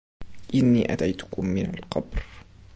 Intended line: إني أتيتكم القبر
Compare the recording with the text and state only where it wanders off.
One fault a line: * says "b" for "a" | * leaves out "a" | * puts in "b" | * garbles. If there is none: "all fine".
* puts in "من"